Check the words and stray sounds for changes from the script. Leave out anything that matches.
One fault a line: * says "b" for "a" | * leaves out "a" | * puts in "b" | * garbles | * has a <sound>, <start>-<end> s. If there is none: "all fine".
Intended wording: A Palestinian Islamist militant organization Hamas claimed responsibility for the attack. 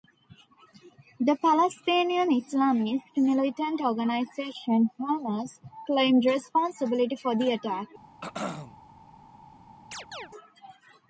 * says "The" for "A"
* has a throat clearing, 8.2-8.8 s
* has a chirp, 9.9-10.3 s